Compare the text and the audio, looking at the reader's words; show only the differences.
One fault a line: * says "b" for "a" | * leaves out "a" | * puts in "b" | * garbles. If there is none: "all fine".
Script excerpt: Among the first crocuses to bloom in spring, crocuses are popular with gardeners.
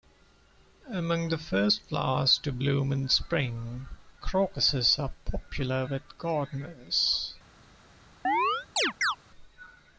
* says "flowers" for "crocuses"